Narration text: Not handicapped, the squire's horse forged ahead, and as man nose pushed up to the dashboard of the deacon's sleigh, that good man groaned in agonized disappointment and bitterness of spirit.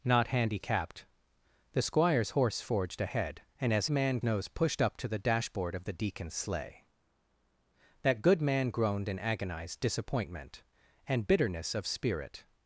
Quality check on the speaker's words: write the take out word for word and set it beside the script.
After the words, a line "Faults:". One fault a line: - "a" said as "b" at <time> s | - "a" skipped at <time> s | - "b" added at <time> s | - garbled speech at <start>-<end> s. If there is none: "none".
Not handicapped, the squire's horse forged ahead, and as man nose pushed up to the dashboard of the deacon's sleigh, that good man groaned in agonized disappointment and bitterness of spirit.
Faults:
none